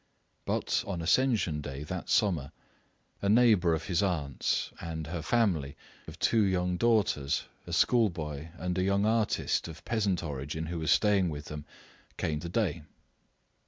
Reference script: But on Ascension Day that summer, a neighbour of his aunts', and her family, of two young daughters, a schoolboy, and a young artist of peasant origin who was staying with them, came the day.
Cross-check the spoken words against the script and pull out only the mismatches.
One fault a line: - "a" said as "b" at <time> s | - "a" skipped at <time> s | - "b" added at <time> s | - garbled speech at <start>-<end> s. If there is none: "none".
none